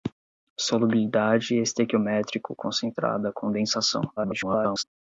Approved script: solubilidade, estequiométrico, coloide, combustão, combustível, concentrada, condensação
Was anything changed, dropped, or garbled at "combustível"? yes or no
yes